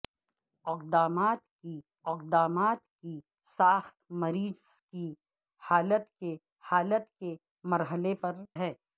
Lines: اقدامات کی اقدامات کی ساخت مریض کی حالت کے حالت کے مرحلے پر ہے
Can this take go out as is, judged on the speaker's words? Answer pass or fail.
pass